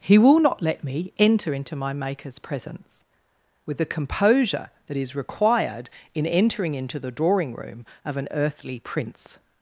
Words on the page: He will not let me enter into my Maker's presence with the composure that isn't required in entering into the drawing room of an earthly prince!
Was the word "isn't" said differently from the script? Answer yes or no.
yes